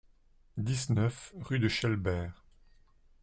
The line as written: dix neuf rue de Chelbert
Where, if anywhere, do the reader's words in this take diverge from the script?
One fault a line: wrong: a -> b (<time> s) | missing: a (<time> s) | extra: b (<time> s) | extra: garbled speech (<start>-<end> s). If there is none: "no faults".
no faults